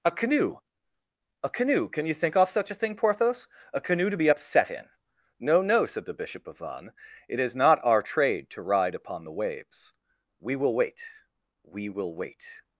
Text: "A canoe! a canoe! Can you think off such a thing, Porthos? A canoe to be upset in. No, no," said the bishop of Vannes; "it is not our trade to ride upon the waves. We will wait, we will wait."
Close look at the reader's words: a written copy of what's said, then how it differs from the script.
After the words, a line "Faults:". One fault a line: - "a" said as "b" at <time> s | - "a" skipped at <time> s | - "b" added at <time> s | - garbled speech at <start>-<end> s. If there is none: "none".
"A canoe! a canoe! Can you think off such a thing, Porthos? A canoe to be upset in. No, no," said the bishop of Vannes; "it is not our trade to ride upon the waves. We will wait, we will wait."
Faults:
none